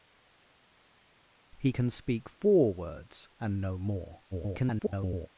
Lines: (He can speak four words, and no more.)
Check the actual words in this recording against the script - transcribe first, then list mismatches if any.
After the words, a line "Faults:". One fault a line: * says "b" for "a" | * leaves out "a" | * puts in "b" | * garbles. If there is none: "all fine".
(He can speak four words, and no more.) [garbled]
Faults:
* garbles